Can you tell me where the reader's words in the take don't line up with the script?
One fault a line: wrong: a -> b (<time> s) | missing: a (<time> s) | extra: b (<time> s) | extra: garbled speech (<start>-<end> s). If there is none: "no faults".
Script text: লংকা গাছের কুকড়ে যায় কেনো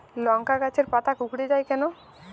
extra: পাতা (0.9 s)